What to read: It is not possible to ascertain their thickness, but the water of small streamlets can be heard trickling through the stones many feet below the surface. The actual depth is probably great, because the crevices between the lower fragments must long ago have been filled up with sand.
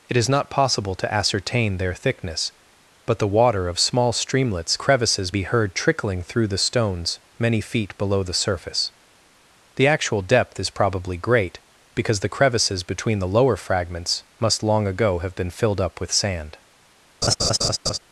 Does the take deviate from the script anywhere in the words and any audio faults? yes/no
yes